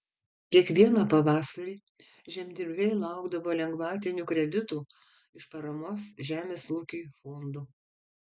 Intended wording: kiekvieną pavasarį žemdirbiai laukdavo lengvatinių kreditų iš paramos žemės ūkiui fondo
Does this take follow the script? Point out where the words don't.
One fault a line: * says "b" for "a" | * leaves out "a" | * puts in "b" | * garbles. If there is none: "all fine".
all fine